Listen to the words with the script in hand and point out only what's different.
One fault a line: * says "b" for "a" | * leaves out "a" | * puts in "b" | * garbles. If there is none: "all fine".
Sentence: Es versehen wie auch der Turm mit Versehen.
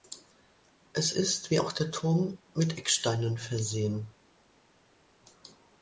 * says "ist" for "versehen"
* puts in "Ecksteinen"